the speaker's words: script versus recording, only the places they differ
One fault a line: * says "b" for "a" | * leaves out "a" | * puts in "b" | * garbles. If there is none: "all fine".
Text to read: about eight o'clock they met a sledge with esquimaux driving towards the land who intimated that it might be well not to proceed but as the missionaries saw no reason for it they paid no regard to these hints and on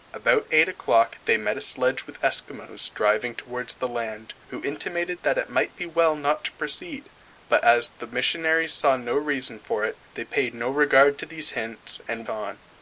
all fine